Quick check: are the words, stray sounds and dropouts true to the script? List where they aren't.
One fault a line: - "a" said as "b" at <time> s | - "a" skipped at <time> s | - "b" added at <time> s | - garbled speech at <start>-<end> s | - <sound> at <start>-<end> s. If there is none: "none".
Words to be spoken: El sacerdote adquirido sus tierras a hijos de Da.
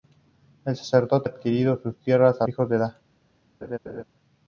- laugh at 3.6-4.0 s